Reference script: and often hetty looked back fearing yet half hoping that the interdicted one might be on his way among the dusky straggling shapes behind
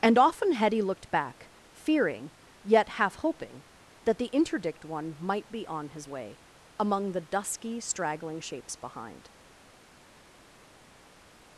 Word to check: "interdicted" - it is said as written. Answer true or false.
false